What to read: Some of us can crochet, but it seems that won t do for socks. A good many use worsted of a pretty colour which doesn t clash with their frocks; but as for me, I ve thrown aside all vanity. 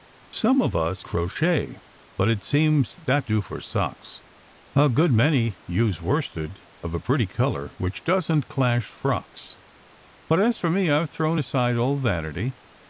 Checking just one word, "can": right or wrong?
wrong